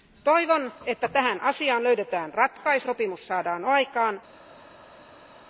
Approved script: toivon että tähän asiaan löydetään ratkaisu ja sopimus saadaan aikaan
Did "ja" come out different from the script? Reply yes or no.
yes